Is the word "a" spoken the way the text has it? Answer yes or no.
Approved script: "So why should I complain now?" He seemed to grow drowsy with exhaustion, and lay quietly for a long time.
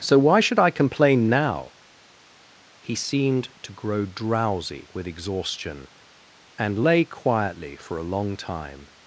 yes